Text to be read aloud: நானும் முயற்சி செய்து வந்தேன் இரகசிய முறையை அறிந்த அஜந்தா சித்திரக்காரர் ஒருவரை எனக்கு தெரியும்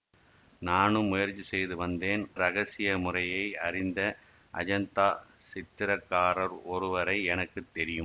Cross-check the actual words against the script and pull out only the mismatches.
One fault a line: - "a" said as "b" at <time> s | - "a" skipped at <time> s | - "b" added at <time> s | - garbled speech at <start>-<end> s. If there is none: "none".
none